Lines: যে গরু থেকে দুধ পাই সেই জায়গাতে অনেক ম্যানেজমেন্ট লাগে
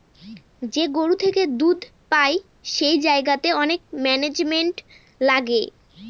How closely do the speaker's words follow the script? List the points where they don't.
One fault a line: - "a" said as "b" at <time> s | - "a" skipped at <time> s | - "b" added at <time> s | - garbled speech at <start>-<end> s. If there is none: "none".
none